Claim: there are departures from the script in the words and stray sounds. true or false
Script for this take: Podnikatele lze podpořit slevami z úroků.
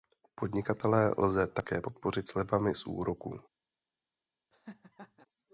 true